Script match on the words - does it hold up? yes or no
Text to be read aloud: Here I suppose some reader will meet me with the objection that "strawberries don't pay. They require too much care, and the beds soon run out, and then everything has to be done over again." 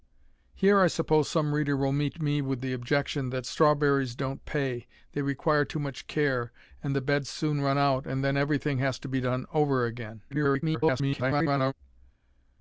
no